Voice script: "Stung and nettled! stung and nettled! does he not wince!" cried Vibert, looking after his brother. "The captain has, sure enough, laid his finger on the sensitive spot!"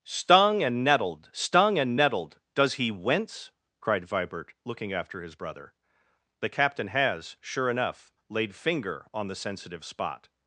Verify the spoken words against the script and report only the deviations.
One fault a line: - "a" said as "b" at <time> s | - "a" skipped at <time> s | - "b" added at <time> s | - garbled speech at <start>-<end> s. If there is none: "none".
- "not" skipped at 2.9 s
- "his" skipped at 8.5 s